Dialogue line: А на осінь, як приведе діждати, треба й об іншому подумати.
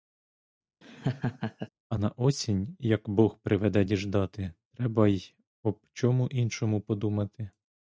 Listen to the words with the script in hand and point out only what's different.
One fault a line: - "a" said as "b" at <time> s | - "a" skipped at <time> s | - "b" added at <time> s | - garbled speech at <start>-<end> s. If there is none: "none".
- "бог" added at 3.1 s
- "чому" added at 5.9 s